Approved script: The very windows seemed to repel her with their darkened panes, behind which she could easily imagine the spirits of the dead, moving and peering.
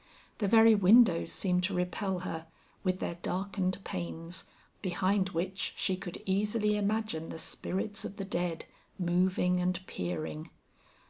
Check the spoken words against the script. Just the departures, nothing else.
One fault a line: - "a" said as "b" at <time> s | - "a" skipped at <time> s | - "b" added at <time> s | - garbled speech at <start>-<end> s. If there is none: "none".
none